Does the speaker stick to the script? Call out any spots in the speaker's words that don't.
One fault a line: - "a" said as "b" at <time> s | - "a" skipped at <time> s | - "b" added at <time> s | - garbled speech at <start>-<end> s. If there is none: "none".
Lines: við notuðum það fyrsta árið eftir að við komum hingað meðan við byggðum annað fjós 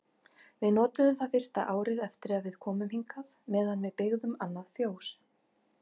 none